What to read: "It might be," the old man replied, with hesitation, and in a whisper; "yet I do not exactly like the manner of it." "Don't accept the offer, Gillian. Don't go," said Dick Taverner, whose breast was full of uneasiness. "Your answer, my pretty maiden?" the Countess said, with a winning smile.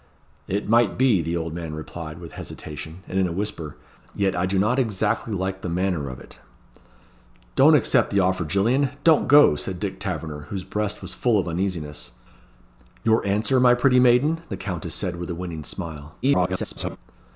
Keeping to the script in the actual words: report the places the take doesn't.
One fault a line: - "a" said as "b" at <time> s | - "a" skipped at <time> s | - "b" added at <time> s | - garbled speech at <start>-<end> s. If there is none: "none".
- garbled speech at 16.2-17.0 s